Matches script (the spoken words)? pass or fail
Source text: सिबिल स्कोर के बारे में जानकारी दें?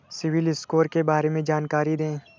pass